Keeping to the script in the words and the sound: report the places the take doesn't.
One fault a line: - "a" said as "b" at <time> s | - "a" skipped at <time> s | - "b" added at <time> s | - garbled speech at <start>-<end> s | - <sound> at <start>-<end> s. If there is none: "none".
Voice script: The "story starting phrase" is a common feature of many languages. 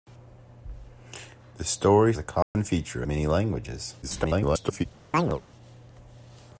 - "starting phrase is" skipped at 2.1 s
- dropout at 2.4-2.6 s
- "of" skipped at 3.0 s
- garbled speech at 4.0-4.9 s
- chirp at 5.1-5.4 s